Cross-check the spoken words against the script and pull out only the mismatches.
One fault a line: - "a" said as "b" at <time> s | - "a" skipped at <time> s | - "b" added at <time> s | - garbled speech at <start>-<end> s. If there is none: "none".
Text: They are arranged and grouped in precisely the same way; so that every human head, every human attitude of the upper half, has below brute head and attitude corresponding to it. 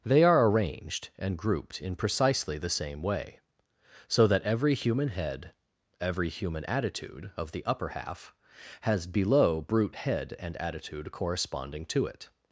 none